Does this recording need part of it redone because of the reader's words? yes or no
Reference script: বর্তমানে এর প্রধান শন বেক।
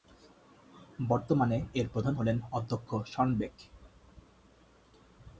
yes